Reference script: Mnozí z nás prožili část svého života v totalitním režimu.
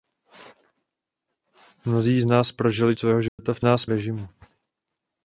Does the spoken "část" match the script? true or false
false